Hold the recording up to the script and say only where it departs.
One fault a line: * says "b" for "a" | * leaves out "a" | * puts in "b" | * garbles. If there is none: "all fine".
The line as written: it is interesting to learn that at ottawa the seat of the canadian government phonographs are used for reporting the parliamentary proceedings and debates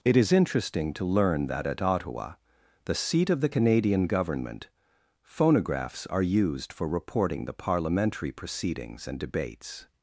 all fine